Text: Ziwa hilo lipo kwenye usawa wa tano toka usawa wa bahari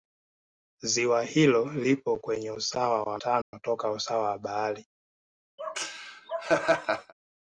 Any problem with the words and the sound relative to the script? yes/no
yes